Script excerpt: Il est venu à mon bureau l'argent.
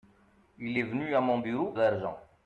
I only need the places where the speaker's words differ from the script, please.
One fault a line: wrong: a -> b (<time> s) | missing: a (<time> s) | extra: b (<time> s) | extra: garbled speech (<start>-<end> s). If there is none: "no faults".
no faults